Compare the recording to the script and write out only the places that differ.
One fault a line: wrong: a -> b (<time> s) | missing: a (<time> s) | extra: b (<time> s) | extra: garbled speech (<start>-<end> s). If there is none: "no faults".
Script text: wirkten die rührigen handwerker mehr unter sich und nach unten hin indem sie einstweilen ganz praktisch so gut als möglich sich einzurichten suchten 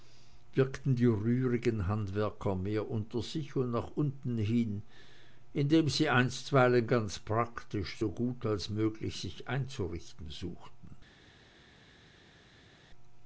no faults